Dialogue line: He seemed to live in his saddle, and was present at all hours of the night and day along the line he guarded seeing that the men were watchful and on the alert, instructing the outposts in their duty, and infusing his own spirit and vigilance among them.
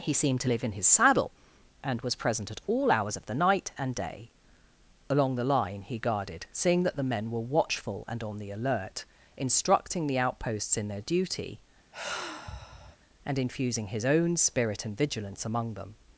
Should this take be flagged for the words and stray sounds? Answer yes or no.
yes